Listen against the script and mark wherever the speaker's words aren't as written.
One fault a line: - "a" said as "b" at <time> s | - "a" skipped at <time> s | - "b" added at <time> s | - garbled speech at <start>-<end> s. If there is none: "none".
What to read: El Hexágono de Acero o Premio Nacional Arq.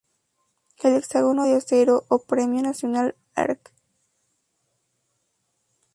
none